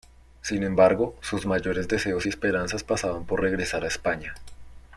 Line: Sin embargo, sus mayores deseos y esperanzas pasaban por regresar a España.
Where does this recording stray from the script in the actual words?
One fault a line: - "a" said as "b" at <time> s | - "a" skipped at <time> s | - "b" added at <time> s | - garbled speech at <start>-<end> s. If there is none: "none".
none